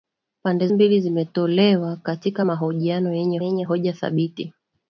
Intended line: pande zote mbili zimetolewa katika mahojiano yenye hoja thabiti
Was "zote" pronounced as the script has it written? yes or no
no